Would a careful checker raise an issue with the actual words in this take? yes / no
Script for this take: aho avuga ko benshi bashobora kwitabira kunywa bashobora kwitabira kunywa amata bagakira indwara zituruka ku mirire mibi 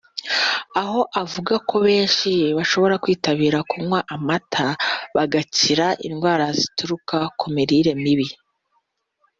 yes